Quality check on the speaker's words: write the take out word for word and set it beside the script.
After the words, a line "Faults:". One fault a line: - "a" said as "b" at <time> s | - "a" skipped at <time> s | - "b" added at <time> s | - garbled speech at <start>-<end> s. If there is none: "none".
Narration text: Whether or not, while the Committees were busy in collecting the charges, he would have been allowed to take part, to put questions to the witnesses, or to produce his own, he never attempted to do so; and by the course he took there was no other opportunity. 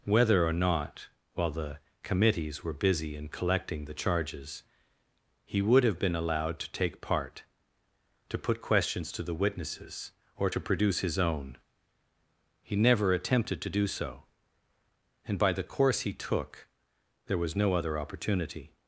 Whether or not, while the Committees were busy in collecting the charges, he would have been allowed to take part, to put questions to the witnesses, or to produce his own, he never attempted to do so; and by the course he took there was no other opportunity.
Faults:
none